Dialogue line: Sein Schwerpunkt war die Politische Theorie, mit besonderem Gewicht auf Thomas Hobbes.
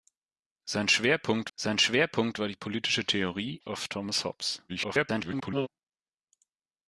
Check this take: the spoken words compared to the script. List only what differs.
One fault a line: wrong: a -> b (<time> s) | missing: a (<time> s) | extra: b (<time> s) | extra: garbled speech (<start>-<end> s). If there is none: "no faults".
extra: sein Schwerpunkt (1.6 s)
missing: mit besonderem Gewicht (3.6 s)
extra: garbled speech (4.7-5.7 s)